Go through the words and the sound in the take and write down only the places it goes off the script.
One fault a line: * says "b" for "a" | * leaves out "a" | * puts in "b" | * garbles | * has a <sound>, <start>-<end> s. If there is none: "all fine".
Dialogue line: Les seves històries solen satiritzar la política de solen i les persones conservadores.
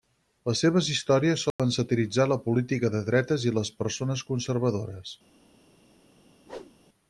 * has a dropout, 1.5-1.6 s
* says "dretes" for "solen"
* has a whoosh, 6.4-6.7 s